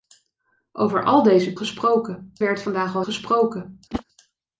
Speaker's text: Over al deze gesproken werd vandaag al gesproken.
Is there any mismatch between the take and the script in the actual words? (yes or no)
no